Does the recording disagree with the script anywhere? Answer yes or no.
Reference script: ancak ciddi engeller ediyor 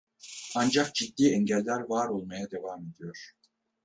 yes